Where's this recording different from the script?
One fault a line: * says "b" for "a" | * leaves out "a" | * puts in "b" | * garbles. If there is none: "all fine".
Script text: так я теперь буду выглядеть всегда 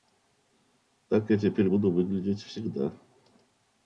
all fine